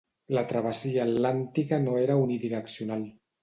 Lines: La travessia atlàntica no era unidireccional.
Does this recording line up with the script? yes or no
yes